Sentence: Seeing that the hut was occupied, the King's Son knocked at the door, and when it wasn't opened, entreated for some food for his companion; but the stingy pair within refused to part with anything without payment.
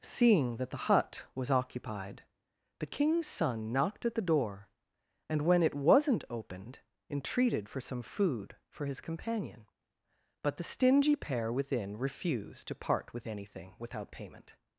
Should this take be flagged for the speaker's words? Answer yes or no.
no